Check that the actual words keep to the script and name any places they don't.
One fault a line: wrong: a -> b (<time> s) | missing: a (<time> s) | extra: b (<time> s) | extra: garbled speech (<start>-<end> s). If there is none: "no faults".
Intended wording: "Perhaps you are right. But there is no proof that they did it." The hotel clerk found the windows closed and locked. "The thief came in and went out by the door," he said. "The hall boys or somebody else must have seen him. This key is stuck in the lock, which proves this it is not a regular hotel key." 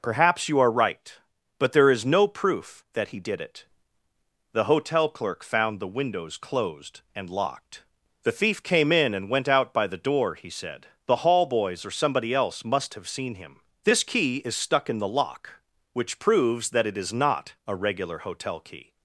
wrong: they -> he (3.1 s)
wrong: this -> that (16.7 s)